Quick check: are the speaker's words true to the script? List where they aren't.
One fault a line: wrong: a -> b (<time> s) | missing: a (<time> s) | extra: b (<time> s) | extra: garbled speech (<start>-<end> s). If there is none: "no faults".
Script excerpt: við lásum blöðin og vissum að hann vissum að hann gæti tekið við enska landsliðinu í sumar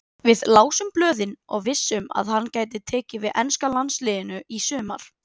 missing: vissum að hann (2.5 s)